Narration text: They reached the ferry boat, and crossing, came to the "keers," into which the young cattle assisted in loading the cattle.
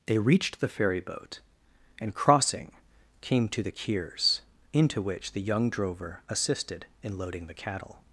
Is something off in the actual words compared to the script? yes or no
yes